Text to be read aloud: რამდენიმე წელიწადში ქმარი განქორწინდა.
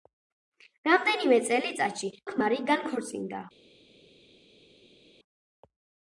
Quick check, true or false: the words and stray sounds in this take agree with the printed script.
true